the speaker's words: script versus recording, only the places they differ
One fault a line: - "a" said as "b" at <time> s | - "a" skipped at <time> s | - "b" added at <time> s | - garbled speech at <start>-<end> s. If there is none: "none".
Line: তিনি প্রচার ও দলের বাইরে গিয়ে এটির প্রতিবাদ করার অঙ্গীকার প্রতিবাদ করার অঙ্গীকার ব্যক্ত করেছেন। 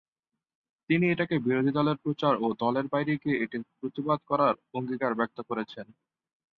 - "এটাকে বিরোধী দলের" added at 1.1 s
- "প্রতিবাদ করার অঙ্গীকার" skipped at 5.1 s